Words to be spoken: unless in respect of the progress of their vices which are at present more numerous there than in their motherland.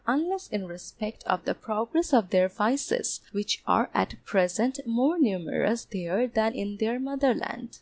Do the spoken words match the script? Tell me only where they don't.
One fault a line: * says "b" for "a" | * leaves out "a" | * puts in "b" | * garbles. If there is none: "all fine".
all fine